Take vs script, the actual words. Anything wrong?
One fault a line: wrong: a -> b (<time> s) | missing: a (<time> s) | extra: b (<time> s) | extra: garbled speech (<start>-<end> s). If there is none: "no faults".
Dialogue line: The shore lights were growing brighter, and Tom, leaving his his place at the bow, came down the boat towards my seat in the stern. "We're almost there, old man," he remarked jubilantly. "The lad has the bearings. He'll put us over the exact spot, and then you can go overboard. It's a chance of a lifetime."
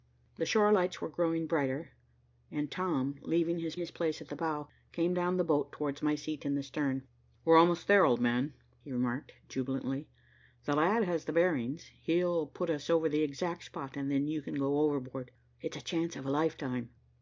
no faults